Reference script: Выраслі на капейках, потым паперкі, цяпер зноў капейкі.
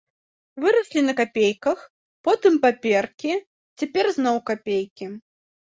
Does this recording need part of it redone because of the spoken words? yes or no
no